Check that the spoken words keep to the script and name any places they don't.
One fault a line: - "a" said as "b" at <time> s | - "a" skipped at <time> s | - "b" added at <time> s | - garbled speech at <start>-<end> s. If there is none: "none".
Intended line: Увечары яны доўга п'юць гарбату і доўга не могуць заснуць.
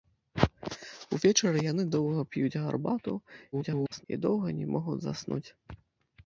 - garbled speech at 3.5-4.0 s